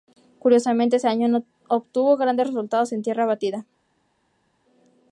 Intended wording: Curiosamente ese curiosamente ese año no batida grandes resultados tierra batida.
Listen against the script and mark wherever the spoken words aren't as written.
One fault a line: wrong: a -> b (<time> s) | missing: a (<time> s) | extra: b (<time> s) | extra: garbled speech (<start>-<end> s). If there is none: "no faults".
missing: curiosamente ese (1.1 s)
wrong: batida -> obtuvo (1.7 s)
extra: en (2.9 s)